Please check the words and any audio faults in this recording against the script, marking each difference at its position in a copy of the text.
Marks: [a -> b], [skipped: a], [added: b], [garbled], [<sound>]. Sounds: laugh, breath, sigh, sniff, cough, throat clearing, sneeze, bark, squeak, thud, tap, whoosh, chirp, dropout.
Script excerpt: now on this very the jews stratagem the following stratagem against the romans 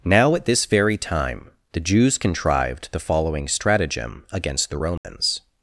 now [on -> at] this very [added: time] the jews [stratagem -> contrived] the following stratagem against the romans [dropout]